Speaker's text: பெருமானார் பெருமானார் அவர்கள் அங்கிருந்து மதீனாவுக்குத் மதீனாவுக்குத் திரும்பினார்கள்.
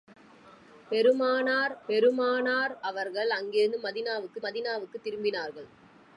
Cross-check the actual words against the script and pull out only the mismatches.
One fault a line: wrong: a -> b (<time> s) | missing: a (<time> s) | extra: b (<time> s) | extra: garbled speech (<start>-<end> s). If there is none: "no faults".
no faults